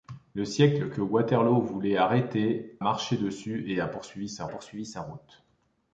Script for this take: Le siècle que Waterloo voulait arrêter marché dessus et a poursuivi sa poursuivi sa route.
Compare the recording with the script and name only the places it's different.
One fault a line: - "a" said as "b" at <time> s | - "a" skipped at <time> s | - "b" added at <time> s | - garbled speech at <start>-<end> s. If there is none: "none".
none